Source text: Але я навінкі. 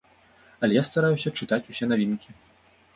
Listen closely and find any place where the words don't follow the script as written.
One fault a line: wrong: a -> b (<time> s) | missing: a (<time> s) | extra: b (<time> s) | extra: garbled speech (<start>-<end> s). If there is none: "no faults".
extra: стараюся чытаць усе (0.9 s)